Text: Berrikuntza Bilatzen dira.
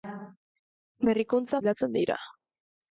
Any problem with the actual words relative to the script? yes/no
no